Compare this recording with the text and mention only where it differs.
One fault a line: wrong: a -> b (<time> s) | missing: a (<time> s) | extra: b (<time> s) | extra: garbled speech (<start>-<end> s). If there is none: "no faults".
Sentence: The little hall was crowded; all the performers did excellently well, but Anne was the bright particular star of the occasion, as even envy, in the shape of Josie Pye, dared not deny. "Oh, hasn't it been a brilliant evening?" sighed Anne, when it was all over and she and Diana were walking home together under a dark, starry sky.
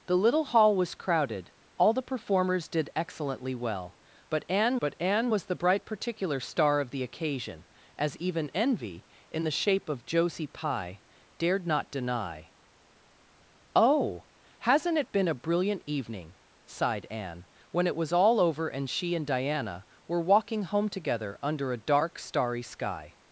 extra: but Anne (4.8 s)